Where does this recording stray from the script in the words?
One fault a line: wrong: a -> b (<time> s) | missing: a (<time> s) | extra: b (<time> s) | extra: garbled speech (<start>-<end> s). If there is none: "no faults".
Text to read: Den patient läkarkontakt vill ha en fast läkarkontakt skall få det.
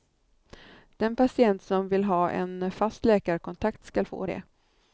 wrong: läkarkontakt -> som (1.6 s)